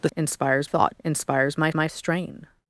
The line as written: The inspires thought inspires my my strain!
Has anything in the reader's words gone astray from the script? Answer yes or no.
no